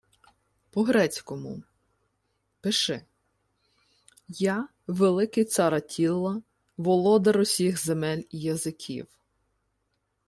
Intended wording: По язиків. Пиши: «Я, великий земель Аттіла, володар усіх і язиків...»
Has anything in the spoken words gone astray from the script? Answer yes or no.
yes